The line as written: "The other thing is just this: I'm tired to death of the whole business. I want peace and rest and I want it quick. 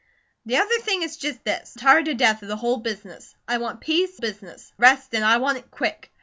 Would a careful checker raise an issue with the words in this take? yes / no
yes